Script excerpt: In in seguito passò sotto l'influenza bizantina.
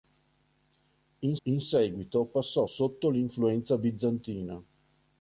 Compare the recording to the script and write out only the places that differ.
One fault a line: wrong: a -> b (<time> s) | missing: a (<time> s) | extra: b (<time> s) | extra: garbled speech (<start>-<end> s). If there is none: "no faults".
no faults